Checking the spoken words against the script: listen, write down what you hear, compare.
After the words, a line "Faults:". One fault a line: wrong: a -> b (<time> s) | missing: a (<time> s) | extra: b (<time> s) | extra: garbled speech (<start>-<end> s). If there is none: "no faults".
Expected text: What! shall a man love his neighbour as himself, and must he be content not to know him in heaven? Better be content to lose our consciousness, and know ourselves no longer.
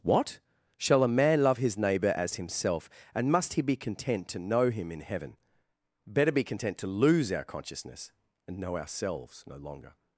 What! shall a man love his neighbour as himself, and must he be content to know him in heaven? Better be content to lose our consciousness, and know ourselves no longer.
Faults:
missing: not (4.3 s)